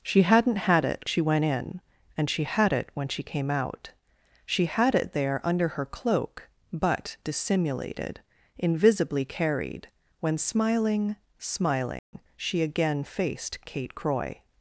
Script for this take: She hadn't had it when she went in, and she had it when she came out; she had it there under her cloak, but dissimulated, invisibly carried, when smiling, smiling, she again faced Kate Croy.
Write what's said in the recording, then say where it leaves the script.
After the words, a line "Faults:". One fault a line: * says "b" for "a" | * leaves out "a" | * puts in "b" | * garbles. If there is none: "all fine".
She hadn't had it she went in, and she had it when she came out; she had it there under her cloak, but dissimulated, invisibly carried, when smiling, smiling, she again faced Kate Croy.
Faults:
* leaves out "when"